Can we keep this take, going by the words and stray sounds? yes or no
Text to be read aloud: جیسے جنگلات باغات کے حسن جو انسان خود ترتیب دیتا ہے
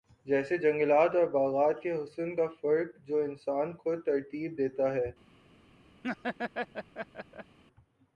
no